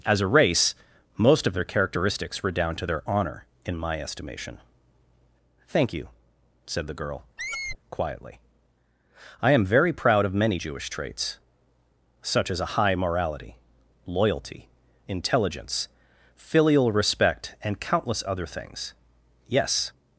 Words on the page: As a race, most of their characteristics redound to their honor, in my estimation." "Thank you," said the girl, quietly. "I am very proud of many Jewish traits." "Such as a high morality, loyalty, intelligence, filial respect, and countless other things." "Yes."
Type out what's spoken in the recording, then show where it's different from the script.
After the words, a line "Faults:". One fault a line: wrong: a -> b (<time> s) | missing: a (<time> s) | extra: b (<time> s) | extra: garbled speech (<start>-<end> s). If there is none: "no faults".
As a race, most of their characteristics redound to their honor, in my estimation." "Thank you," said the girl, quietly. "I am very proud of many Jewish traits." "Such as a high morality, loyalty, intelligence, filial respect, and countless other things." "Yes."
Faults:
no faults